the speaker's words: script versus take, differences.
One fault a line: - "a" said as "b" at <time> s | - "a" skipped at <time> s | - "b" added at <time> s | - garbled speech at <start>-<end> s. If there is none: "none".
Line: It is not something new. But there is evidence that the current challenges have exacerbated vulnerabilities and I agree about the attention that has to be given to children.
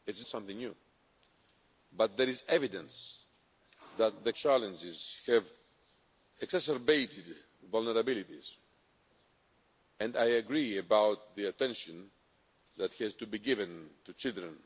- "not" skipped at 0.2 s
- "current" skipped at 4.3 s